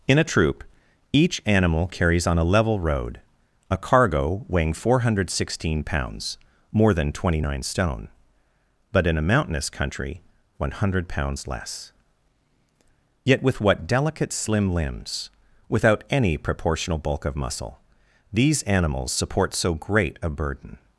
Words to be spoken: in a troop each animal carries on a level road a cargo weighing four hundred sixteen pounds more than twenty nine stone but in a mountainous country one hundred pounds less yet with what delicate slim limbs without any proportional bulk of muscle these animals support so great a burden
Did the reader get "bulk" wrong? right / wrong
right